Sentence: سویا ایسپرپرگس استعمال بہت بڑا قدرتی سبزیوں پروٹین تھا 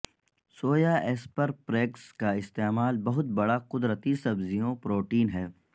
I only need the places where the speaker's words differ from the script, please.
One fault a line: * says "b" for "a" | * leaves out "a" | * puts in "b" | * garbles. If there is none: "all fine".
* puts in "کا"
* says "ہے" for "تھا"